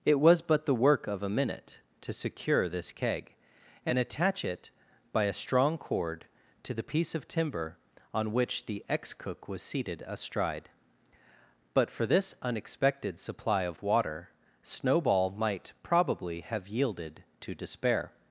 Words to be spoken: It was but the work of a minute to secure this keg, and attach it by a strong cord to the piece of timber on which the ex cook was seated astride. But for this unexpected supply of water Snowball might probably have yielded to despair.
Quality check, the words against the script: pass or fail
pass